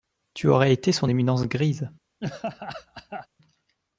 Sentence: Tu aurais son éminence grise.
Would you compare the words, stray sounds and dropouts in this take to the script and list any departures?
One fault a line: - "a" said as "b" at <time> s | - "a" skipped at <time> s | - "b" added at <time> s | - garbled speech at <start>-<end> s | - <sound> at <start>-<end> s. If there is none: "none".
- "été" added at 0.7 s
- laugh at 2.2-3.3 s